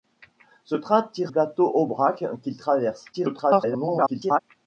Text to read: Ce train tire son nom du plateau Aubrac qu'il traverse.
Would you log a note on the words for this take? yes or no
yes